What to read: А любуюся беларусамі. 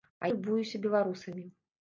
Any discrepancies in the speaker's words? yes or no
no